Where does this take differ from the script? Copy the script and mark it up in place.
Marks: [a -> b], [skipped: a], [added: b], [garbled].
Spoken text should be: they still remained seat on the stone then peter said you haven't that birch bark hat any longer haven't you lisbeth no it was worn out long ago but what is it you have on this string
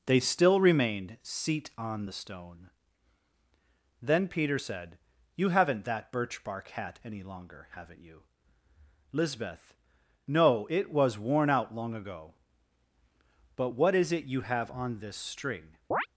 they still remained seat on the stone then peter said you haven't that birch bark hat any longer haven't you lisbeth no it was worn out long ago but what is it you have on this string